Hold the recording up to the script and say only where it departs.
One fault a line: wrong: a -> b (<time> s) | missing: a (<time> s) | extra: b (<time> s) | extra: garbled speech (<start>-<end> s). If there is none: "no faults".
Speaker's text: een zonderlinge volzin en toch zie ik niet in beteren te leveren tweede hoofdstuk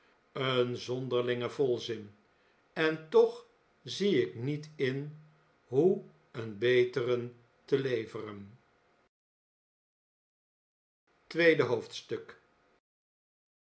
extra: hoe een (5.7 s)